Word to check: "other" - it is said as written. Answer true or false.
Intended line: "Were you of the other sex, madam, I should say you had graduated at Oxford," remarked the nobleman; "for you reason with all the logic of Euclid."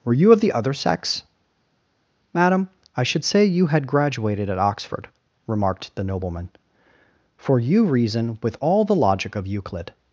true